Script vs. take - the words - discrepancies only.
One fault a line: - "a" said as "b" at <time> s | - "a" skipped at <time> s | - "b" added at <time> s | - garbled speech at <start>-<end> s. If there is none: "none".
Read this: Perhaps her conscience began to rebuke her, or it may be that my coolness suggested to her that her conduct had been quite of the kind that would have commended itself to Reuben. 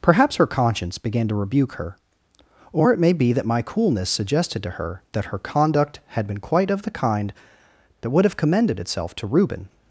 none